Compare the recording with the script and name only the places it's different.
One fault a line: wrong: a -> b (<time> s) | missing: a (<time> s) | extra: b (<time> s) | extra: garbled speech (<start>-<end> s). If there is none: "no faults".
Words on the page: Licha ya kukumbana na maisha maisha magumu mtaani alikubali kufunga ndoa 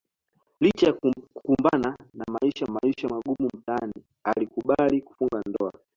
no faults